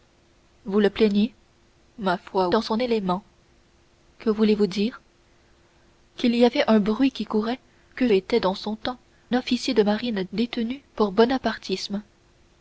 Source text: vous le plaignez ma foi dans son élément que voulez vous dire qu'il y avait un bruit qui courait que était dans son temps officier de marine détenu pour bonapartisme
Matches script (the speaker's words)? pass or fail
pass